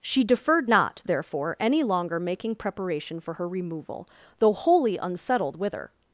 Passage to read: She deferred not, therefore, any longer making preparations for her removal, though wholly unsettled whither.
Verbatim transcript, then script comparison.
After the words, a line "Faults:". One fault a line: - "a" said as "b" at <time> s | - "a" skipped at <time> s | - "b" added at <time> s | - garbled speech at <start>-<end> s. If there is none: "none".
She deferred not, therefore, any longer making preparation for her removal, though wholly unsettled whither.
Faults:
- "preparations" said as "preparation" at 2.5 s